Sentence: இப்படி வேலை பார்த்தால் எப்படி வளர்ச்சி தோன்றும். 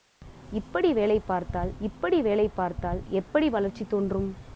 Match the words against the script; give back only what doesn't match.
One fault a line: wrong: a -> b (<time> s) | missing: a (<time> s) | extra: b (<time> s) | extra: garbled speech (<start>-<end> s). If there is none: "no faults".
extra: இப்படி வேலை பார்த்தால் (1.8 s)